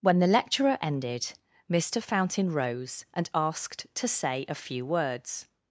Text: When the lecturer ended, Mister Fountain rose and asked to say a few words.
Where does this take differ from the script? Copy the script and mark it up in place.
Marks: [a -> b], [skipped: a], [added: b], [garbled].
When the lecturer ended, Mister Fountain rose and asked to say a few words.